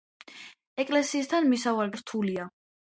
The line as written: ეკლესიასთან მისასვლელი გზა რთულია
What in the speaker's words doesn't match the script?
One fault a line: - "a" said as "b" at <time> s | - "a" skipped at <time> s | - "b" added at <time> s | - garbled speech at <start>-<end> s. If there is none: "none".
- "გზა" skipped at 1.9 s